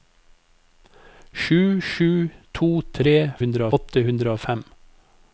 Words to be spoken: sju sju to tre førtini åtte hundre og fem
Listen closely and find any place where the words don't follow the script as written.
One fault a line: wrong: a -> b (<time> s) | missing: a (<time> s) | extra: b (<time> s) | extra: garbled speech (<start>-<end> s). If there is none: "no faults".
wrong: førtini -> hundre (3.4 s)